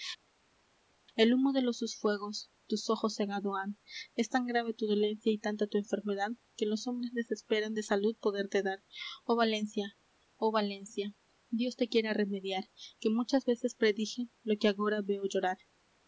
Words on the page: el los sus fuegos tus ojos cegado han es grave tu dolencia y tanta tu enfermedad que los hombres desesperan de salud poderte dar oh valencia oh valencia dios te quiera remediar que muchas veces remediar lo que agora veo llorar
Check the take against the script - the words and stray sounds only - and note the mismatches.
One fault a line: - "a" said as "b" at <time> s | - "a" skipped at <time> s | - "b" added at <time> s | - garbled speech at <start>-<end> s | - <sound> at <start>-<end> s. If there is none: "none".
- "humo de" added at 1.3 s
- "tan" added at 4.3 s
- "remediar" said as "predije" at 13.7 s